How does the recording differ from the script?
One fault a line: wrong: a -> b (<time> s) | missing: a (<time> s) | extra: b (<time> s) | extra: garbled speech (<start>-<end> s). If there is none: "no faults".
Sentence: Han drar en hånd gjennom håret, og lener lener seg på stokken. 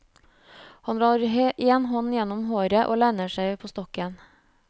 missing: lener (3.4 s)